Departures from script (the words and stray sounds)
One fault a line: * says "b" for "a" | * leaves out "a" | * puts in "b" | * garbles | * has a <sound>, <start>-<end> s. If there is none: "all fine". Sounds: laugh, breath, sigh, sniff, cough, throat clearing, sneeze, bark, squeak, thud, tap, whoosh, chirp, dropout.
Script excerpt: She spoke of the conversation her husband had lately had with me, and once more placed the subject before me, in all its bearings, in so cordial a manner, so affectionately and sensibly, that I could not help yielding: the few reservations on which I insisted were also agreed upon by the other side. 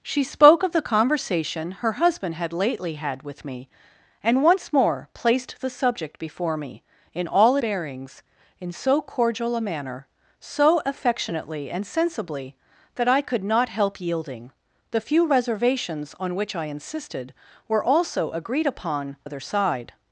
* leaves out "its"
* leaves out "by the"